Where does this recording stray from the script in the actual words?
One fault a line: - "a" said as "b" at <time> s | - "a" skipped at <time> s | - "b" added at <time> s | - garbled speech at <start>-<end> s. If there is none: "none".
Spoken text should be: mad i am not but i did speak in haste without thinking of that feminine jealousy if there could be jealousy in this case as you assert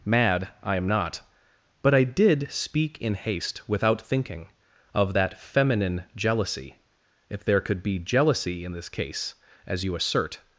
none